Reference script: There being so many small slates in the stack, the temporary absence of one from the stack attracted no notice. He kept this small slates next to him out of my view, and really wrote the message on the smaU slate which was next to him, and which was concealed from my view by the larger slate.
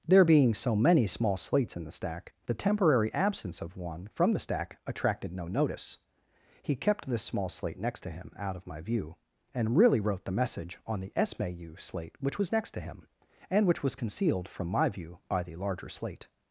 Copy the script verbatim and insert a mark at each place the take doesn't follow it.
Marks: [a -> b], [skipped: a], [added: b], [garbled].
There being so many small slates in the stack, the temporary absence of one from the stack attracted no notice. He kept this small [slates -> slate] next to him out of my view, and really wrote the message on the smaU slate which was next to him, and which was concealed from my view by the larger slate.